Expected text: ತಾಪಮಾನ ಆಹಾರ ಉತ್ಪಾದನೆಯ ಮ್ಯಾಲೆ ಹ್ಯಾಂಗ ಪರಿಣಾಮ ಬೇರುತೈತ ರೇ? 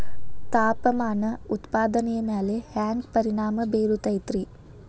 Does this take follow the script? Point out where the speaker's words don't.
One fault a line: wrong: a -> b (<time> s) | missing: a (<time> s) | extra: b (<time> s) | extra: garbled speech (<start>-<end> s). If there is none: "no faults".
missing: ಆಹಾರ (1.2 s)